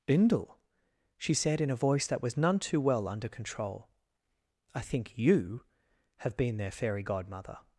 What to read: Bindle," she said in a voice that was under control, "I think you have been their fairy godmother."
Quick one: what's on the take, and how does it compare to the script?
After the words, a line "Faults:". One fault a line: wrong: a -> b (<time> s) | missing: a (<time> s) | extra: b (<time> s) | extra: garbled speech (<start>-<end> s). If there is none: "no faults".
Bindle," she said in a voice that was none too well under control, "I think you have been their fairy godmother."
Faults:
extra: none too well (2.4 s)